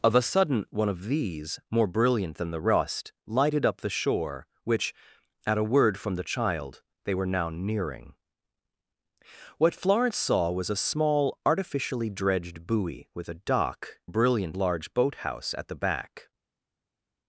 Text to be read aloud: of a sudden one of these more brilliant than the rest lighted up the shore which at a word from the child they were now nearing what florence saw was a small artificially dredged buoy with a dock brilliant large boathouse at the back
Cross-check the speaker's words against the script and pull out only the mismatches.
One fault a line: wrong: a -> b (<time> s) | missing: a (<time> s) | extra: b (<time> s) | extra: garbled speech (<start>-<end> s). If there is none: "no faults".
no faults